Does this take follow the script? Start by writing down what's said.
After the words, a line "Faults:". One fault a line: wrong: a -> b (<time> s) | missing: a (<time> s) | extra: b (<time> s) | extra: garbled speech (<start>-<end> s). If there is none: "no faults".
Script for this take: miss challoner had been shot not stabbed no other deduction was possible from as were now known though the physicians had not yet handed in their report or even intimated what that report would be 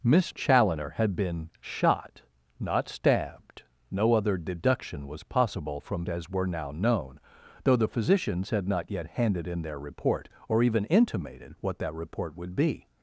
miss challoner had been shot not stabbed no other deduction was possible from as were now known though the physicians had not yet handed in their report or even intimated what that report would be
Faults:
no faults